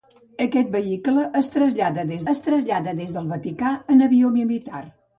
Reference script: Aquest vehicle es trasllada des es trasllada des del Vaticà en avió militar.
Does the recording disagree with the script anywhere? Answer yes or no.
no